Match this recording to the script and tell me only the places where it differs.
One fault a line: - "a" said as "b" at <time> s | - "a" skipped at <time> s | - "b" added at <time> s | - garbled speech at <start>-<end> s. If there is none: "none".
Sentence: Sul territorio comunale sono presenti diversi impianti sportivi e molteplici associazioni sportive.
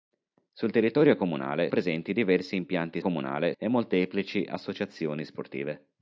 - "sono" skipped at 1.7 s
- "sportivi" said as "comunale" at 3.0 s